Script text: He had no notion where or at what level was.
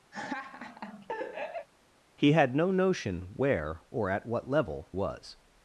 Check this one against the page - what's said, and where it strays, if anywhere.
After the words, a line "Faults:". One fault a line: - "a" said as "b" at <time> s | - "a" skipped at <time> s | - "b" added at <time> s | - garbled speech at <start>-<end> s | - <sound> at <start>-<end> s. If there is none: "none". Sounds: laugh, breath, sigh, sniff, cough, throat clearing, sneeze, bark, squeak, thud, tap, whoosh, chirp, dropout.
He had no notion where or at what level was.
Faults:
- laugh at 0.1-1.7 s